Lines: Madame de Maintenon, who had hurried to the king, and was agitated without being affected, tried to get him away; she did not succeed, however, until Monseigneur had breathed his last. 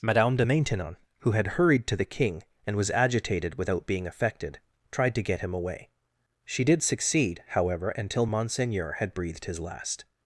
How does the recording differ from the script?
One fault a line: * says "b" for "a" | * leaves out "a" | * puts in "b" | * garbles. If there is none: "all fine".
* leaves out "not"